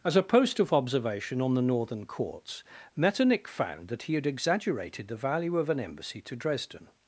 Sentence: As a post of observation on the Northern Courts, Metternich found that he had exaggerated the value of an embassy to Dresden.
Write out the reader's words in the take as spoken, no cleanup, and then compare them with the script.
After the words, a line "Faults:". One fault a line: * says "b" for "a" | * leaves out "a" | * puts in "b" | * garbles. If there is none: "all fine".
As a post of observation on the Northern Courts, Metternich found that he had exaggerated the value of an embassy to Dresden.
Faults:
all fine